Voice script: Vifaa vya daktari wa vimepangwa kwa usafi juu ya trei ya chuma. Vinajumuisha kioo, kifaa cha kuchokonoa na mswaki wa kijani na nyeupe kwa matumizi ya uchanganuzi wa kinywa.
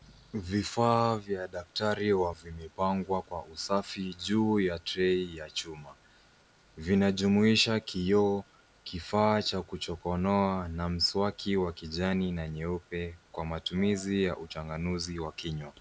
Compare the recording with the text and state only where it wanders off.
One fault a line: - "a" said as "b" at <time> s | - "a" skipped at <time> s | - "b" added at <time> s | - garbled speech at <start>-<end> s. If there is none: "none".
none